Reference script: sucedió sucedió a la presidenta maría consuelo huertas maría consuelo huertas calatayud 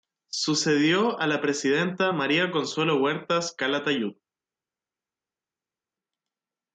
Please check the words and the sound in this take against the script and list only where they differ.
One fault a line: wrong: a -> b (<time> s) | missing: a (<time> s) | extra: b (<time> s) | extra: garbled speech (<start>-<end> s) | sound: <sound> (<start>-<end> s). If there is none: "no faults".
missing: sucedió (1.2 s)
missing: maría consuelo huertas (3.5 s)